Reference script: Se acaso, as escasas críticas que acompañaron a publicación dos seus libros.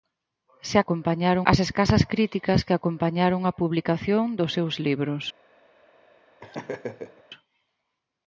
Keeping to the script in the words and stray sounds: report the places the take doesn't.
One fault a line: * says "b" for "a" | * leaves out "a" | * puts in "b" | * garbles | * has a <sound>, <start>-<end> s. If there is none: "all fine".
* says "acompañaron" for "acaso"
* has a laugh, 6.4-7.2 s